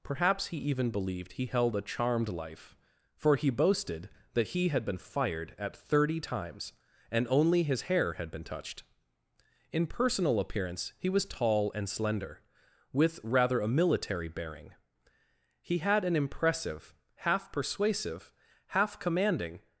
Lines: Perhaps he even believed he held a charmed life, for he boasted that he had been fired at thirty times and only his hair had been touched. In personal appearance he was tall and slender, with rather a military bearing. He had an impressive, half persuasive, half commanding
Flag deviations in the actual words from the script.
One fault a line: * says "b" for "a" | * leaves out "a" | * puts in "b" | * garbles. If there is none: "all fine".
all fine